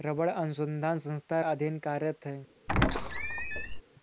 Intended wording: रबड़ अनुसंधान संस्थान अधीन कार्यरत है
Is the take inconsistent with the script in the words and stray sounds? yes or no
yes